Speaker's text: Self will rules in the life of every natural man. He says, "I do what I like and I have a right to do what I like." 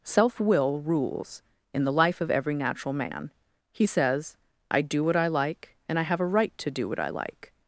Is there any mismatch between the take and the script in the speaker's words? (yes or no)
no